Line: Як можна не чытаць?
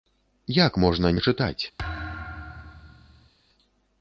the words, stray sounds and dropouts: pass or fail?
fail